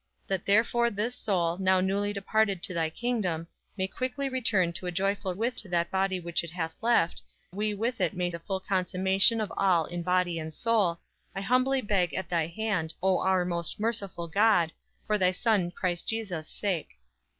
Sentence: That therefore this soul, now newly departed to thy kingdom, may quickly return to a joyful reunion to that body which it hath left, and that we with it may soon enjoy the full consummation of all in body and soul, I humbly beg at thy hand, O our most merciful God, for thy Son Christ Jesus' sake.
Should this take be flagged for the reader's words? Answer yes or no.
yes